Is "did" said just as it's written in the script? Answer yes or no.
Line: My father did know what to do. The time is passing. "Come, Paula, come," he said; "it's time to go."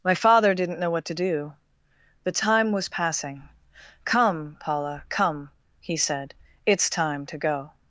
no